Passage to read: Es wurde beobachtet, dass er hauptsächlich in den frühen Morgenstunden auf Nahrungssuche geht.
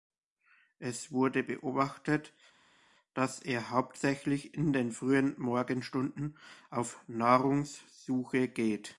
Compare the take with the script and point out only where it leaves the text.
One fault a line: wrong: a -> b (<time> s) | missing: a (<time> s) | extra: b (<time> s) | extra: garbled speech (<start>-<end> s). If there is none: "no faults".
no faults